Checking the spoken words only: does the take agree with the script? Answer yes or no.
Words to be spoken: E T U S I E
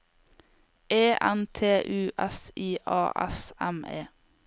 no